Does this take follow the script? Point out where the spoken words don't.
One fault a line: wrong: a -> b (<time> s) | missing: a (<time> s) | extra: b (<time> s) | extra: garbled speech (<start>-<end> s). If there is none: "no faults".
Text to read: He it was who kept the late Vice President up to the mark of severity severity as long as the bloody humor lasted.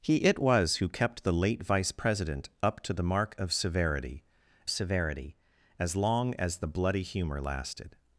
no faults